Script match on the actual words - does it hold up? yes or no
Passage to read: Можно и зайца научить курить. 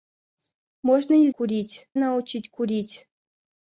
no